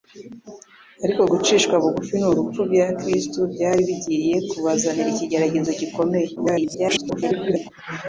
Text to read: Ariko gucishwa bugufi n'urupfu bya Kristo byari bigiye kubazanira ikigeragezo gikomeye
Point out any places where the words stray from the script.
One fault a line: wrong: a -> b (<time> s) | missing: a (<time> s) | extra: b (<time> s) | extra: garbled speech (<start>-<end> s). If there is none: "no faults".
extra: garbled speech (6.4-7.7 s)